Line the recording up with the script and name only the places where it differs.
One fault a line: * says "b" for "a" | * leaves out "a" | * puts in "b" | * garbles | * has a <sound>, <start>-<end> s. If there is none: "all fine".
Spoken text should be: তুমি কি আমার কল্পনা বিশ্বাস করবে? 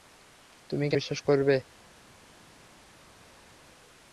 * leaves out "আমার কল্পনা"